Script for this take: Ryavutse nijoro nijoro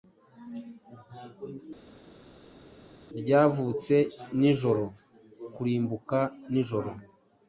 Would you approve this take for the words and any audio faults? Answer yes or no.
no